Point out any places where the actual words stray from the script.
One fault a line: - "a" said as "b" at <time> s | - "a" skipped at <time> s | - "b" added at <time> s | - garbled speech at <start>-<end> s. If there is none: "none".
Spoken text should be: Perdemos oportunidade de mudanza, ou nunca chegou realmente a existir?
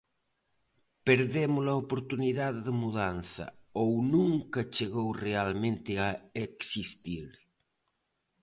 - "a" added at 1.7 s